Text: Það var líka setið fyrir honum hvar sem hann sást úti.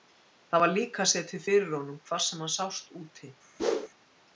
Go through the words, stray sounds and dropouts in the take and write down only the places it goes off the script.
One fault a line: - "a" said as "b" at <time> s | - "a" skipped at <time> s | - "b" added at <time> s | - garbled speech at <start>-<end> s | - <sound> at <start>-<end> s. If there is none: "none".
- whoosh at 3.6-3.9 s